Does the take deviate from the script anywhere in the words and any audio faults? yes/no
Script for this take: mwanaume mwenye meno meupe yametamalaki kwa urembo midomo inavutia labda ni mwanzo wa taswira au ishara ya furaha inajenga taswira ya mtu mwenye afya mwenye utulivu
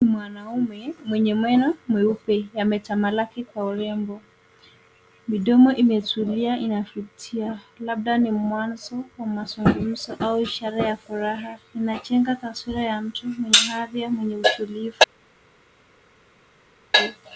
yes